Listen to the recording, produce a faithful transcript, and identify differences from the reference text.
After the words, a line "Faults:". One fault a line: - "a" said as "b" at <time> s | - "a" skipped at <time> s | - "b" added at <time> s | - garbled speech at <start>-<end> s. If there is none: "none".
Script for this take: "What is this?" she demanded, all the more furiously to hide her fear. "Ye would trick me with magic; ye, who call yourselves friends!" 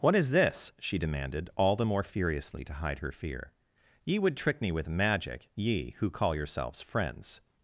"What is this?" she demanded, all the more furiously to hide her fear. "Ye would trick me with magic; ye, who call yourselves friends!"
Faults:
none